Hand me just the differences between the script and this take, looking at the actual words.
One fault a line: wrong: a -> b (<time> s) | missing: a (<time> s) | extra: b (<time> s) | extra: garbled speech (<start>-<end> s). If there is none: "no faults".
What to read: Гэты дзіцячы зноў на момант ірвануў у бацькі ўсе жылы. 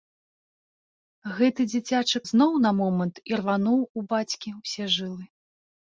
no faults